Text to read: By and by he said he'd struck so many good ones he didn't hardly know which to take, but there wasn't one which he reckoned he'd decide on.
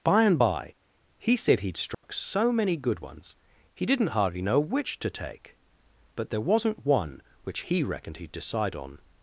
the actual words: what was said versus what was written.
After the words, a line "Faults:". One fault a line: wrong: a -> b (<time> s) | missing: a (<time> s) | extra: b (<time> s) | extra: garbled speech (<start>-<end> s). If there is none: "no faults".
By and by he said he'd struck so many good ones he didn't hardly know which to take, but there wasn't one which he reckoned he'd decide on.
Faults:
no faults